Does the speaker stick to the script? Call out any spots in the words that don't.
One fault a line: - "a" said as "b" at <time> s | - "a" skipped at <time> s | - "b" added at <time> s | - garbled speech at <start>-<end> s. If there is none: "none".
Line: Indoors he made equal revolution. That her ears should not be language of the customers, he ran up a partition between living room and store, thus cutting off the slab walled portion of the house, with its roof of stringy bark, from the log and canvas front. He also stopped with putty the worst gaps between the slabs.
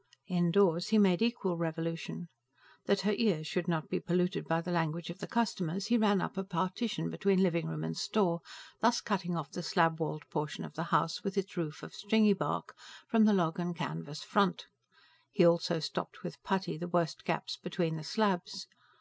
- "polluted by the" added at 4.0 s